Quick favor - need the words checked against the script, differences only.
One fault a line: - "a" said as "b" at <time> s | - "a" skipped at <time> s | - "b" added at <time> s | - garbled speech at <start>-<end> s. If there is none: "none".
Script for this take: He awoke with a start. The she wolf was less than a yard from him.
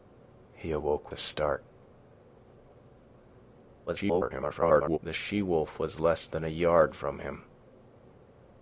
- "with" skipped at 1.1 s
- garbled speech at 3.9-5.0 s